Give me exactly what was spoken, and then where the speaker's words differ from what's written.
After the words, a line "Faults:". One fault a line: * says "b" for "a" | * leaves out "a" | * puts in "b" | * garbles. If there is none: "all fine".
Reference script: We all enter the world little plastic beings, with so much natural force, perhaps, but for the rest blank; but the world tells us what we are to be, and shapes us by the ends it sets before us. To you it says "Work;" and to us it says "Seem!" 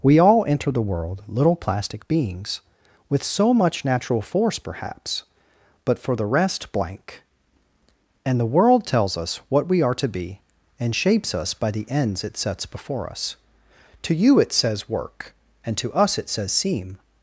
We all enter the world little plastic beings, with so much natural force, perhaps, but for the rest blank; and the world tells us what we are to be, and shapes us by the ends it sets before us. To you it says "Work;" and to us it says "Seem!"
Faults:
* says "and" for "but"